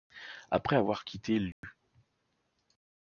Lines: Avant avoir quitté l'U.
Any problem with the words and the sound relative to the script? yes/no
yes